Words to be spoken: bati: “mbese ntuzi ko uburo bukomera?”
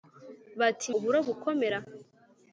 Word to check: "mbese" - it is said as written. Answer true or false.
false